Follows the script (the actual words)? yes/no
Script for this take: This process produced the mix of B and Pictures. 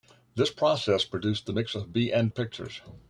yes